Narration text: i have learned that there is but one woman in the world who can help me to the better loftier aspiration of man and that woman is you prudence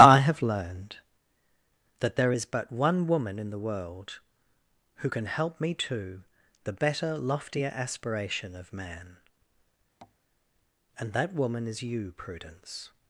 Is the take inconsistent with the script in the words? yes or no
no